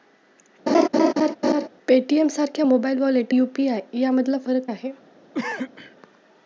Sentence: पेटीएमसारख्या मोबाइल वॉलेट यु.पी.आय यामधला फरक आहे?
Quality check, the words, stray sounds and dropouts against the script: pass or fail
fail